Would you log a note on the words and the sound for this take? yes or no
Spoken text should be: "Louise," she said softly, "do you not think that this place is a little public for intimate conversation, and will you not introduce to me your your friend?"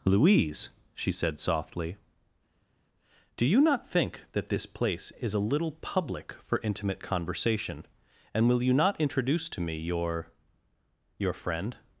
no